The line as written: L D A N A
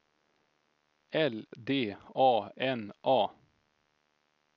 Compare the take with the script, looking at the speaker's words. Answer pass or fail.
pass